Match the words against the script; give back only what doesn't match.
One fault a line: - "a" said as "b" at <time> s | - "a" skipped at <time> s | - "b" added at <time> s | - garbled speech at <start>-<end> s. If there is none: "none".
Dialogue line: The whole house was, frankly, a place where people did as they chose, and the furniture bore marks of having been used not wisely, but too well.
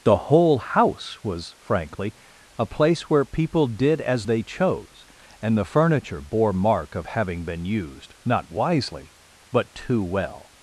- "marks" said as "mark" at 6.5 s